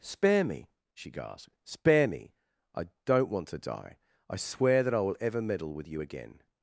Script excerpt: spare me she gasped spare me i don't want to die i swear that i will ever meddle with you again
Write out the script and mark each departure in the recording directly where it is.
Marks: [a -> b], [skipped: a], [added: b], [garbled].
spare me she gasped spare me i don't want to die i swear that i will ever meddle with you again